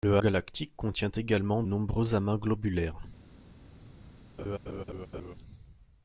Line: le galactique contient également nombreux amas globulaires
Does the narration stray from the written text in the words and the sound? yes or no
yes